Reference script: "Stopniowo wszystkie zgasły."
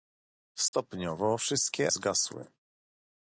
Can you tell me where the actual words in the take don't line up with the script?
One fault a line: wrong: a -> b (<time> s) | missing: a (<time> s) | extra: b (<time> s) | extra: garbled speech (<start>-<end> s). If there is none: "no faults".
no faults